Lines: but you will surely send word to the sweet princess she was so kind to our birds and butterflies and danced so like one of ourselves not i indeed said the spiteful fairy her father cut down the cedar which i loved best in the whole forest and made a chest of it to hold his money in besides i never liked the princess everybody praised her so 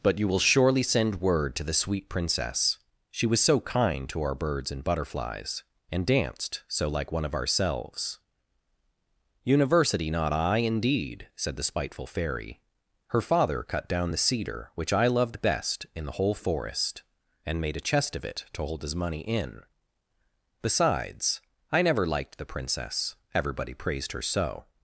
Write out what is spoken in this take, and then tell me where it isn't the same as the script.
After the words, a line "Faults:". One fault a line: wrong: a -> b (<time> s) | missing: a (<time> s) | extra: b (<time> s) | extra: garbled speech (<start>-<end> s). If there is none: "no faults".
but you will surely send word to the sweet princess she was so kind to our birds and butterflies and danced so like one of ourselves university not i indeed said the spiteful fairy her father cut down the cedar which i loved best in the whole forest and made a chest of it to hold his money in besides i never liked the princess everybody praised her so
Faults:
extra: university (9.4 s)